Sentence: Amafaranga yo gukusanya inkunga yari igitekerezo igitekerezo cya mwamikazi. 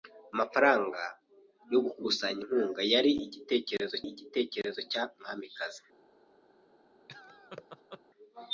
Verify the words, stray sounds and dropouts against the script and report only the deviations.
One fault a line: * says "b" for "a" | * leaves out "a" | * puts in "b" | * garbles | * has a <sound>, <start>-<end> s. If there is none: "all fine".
* has a laugh, 7.1-8.0 s